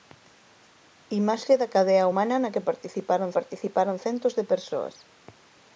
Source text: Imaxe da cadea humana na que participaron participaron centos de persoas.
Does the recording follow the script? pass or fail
pass